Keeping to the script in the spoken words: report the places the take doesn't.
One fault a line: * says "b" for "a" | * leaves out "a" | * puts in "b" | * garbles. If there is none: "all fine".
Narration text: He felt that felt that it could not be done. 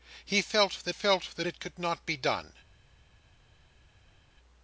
all fine